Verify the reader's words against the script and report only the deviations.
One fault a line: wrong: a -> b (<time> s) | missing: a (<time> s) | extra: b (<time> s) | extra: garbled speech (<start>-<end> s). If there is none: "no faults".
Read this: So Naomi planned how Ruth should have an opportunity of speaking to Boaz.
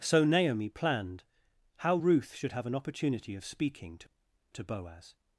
extra: to (4.5 s)